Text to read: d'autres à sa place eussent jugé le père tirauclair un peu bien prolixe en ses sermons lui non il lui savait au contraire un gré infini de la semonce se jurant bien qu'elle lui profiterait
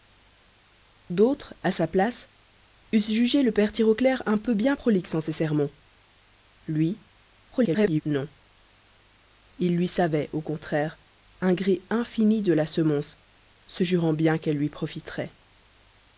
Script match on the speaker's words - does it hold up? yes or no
no